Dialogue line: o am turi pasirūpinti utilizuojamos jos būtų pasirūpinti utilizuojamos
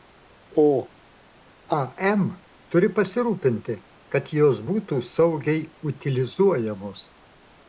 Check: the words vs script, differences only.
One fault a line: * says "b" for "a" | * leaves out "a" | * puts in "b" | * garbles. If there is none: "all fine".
* says "kad" for "utilizuojamos"
* says "saugiai" for "pasirūpinti"